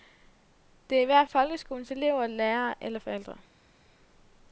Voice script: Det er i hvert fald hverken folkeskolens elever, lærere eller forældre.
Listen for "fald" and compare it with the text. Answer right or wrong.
wrong